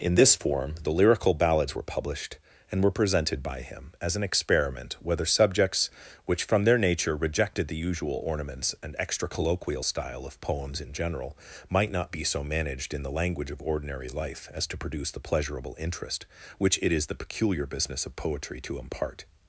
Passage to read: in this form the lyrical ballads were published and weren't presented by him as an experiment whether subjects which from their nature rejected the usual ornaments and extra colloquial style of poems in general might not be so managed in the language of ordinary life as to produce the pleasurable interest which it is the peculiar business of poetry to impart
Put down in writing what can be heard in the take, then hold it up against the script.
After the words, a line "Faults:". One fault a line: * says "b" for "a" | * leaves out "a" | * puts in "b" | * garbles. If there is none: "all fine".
in this form the lyrical ballads were published and were presented by him as an experiment whether subjects which from their nature rejected the usual ornaments and extra colloquial style of poems in general might not be so managed in the language of ordinary life as to produce the pleasurable interest which it is the peculiar business of poetry to impart
Faults:
* says "were" for "weren't"